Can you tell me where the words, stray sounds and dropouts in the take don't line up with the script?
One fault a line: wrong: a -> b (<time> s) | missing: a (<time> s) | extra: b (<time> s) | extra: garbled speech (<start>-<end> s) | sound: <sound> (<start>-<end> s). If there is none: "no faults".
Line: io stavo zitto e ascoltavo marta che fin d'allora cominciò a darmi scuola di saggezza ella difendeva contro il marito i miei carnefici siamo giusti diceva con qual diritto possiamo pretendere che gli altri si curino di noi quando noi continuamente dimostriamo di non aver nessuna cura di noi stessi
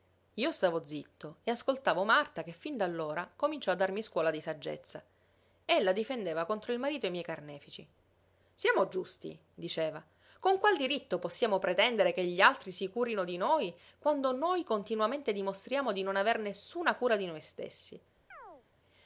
sound: chirp (18.3-18.7 s)